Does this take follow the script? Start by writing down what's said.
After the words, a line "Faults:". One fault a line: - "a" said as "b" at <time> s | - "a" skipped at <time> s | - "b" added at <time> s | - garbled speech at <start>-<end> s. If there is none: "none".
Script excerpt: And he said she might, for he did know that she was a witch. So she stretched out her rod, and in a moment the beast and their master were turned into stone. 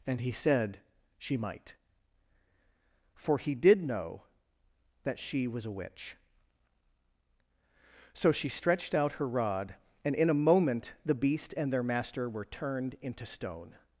And he said she might, for he did know that she was a witch. So she stretched out her rod, and in a moment the beast and their master were turned into stone.
Faults:
none